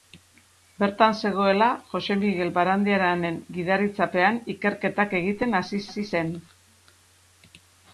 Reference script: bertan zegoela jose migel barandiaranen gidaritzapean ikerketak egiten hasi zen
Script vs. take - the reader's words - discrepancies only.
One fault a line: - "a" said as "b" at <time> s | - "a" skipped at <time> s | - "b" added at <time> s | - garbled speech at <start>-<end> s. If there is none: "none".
- "hasi" added at 5.9 s